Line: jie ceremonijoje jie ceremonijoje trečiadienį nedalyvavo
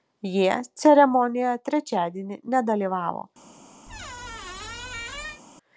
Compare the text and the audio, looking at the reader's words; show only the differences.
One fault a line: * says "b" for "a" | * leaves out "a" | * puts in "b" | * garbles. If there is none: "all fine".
* leaves out "jie ceremonijoje"